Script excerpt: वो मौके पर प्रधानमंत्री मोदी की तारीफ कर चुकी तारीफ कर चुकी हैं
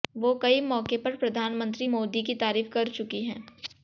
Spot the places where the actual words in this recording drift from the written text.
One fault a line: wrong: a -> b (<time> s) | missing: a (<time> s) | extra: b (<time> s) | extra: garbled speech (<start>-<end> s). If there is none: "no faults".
extra: कई (0.3 s)
missing: तारीफ कर चुकी (3.2 s)